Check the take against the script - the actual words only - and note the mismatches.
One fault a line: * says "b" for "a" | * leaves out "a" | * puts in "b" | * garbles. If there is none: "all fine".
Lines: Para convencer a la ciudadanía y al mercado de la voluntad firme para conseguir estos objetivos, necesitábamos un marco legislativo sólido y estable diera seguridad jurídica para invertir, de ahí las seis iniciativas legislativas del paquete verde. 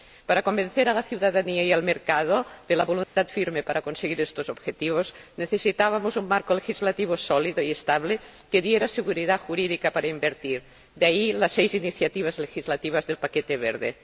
* puts in "que"